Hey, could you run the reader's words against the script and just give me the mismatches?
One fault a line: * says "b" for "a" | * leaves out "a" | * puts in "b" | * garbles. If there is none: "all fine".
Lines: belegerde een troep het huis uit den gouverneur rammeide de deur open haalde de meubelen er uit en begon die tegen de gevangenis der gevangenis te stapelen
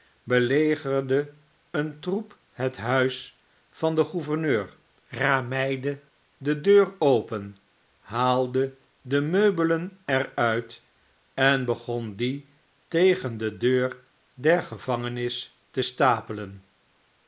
* says "van" for "uit"
* says "deur" for "gevangenis"